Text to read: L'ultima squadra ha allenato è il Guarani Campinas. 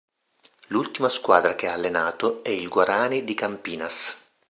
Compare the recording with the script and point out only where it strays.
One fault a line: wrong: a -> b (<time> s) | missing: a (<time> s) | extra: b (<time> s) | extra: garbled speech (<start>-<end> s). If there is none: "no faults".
extra: che (1.5 s)
extra: di (3.2 s)